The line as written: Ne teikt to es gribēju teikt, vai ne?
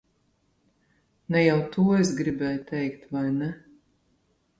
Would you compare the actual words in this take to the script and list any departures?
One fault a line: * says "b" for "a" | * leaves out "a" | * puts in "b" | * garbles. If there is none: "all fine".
* says "jau" for "teikt"